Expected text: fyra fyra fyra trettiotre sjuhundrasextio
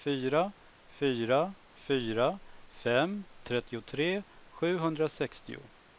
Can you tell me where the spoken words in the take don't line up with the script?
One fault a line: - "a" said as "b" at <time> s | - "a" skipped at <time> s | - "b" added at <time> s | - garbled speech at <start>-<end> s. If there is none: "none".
- "fem" added at 2.8 s